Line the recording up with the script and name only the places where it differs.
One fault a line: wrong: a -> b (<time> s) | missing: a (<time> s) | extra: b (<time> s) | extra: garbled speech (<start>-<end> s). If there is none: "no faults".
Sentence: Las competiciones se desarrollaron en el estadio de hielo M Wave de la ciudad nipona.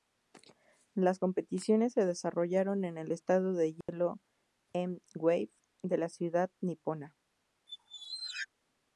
no faults